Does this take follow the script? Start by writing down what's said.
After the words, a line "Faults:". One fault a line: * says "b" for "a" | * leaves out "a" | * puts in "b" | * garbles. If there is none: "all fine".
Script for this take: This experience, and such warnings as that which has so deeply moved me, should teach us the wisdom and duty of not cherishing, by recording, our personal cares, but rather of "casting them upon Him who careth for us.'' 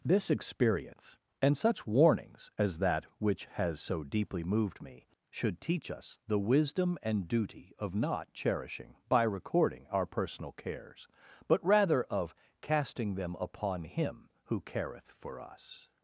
This experience, and such warnings as that which has so deeply moved me, should teach us the wisdom and duty of not cherishing, by recording, our personal cares, but rather of "casting them upon Him who careth for us.''
Faults:
all fine